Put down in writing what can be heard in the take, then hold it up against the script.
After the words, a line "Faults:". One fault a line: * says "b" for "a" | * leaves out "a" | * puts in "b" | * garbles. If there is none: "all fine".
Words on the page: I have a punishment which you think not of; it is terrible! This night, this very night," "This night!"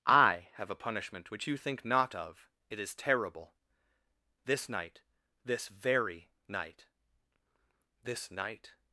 I have a punishment which you think not of; it is terrible! This night, this very night," "This night!"
Faults:
all fine